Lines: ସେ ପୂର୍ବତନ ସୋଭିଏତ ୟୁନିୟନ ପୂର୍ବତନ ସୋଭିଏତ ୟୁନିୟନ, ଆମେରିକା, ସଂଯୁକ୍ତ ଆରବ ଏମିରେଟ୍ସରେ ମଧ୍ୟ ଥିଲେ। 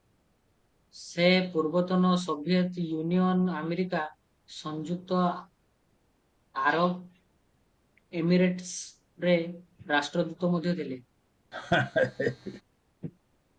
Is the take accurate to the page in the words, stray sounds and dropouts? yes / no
no